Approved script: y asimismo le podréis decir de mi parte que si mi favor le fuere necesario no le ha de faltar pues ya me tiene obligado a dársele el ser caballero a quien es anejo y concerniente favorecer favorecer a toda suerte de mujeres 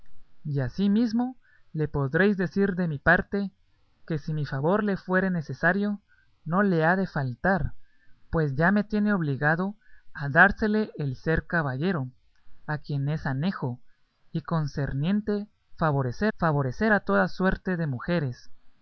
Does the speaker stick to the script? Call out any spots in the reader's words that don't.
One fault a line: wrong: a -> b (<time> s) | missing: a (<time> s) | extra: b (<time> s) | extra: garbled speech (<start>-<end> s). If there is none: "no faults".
no faults